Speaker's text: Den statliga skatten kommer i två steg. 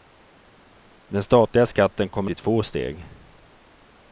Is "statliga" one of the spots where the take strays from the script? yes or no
no